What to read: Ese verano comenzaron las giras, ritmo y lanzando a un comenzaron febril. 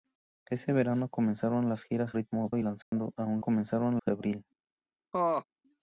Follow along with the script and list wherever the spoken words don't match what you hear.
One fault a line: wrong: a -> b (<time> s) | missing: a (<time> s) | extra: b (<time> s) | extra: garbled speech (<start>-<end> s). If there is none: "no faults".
no faults